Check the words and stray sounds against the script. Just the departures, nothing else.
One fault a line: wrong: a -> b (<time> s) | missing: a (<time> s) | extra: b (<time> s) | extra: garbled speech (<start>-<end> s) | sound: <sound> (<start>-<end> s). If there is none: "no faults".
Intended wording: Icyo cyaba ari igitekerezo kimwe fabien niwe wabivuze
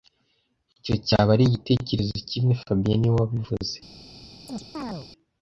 sound: chirp (4.5-5.1 s)